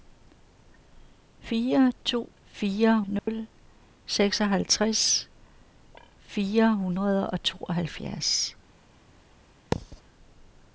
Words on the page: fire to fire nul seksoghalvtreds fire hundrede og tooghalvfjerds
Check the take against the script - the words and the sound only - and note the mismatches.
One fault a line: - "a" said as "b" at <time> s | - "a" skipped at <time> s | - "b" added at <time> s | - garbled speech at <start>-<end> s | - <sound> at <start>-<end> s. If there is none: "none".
- dropout at 3.2-3.3 s
- thud at 9.7-10.0 s